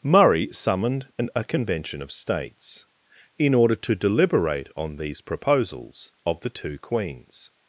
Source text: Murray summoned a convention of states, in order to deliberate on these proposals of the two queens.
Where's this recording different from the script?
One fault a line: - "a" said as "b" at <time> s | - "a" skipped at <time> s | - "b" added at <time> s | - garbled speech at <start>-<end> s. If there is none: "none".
- "an" added at 1.2 s